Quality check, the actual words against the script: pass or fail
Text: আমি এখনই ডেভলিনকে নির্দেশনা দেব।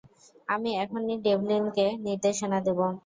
pass